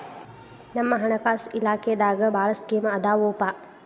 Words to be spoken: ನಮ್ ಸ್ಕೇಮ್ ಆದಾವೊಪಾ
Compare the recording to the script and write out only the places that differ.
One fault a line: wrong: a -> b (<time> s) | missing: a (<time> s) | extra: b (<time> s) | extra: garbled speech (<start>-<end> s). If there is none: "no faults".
extra: ಹಣಕಾಸ ಇಲಾಖೆದಾಗ ಭಾಳ್ (0.9 s)